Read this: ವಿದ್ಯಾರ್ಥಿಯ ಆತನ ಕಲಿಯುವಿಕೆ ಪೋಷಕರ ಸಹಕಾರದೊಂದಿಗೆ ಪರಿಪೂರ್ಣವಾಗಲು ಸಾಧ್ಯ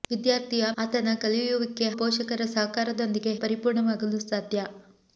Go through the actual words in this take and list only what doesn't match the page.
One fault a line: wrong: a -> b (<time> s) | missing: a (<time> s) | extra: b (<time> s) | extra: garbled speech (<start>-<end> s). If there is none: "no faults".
no faults